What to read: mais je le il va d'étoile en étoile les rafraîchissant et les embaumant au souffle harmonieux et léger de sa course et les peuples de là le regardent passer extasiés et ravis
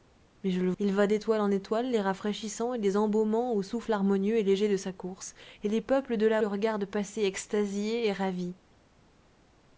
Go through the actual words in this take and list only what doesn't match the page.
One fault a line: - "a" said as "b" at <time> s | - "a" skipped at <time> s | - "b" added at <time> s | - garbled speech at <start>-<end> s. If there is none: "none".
none